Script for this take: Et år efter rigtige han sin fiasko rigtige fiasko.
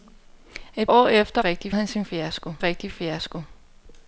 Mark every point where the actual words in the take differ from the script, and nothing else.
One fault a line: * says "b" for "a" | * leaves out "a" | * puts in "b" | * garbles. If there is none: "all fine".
all fine